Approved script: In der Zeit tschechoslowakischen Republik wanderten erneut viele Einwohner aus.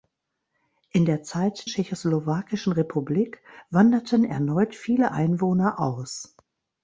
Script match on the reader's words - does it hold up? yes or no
yes